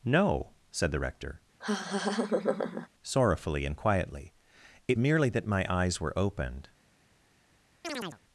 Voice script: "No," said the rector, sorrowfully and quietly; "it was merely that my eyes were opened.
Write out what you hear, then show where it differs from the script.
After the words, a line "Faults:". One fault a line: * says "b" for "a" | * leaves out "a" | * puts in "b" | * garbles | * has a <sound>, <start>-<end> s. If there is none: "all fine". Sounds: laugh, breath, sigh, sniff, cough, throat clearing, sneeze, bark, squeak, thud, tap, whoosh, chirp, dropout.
"No," said the rector, sorrowfully and quietly; "it merely that my eyes were opened.
Faults:
* has a laugh, 1.6-2.9 s
* leaves out "was"
* has a chirp, 7.8-8.2 s